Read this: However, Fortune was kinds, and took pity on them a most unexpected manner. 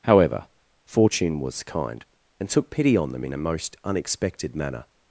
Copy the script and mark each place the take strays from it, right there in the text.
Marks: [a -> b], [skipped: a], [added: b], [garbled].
However, Fortune was [kinds, -> kind] and took pity on them [added: in] a most unexpected manner.